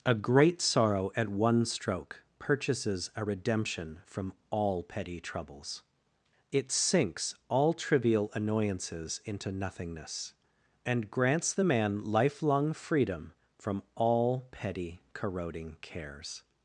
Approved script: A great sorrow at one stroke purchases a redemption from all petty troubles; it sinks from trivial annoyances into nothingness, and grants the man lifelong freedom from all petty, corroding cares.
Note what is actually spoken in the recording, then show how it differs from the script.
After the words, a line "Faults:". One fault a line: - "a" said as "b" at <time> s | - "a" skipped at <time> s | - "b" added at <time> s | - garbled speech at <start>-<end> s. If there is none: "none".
A great sorrow at one stroke purchases a redemption from all petty troubles; it sinks all trivial annoyances into nothingness, and grants the man lifelong freedom from all petty, corroding cares.
Faults:
- "from" said as "all" at 7.5 s